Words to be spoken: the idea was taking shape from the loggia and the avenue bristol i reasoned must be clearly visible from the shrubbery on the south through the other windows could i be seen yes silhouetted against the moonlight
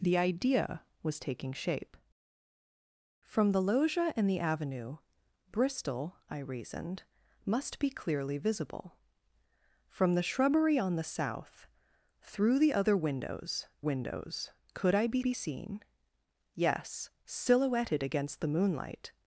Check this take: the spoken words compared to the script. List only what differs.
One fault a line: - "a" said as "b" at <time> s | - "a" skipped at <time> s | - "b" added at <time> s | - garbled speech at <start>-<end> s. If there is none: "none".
- "windows" added at 13.8 s
- "be" added at 15.2 s